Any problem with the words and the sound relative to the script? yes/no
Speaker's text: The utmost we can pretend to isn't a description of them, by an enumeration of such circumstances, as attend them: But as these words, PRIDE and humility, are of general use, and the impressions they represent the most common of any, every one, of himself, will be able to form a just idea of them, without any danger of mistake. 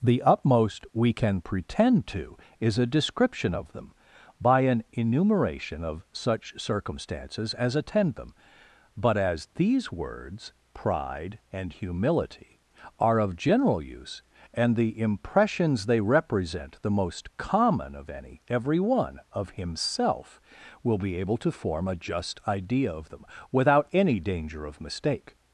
yes